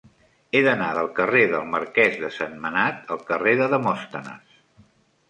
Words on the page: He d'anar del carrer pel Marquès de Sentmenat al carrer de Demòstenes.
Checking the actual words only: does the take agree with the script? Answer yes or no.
no